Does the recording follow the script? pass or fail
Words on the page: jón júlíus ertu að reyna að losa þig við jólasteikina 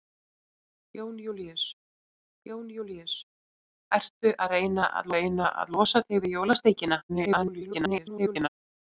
fail